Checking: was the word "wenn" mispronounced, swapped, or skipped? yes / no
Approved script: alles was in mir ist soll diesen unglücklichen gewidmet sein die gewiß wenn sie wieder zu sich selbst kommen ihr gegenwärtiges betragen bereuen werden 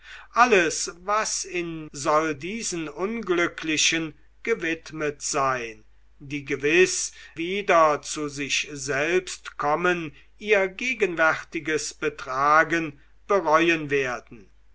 yes